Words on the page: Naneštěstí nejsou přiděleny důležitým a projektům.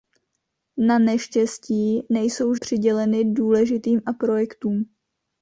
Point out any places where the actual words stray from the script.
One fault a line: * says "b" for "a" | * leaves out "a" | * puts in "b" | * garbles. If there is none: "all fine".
all fine